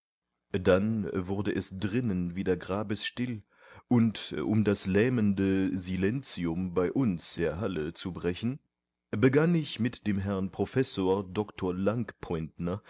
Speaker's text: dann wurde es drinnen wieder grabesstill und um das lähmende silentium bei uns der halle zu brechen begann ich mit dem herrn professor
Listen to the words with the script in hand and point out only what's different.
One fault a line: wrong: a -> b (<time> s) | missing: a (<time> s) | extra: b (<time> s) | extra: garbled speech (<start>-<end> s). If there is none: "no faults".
no faults